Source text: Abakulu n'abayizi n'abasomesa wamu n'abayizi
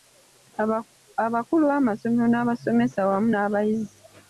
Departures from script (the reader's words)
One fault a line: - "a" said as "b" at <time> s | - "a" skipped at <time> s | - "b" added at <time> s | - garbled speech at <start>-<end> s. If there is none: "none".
- "n'abayizi" said as "b'amasomero" at 1.7 s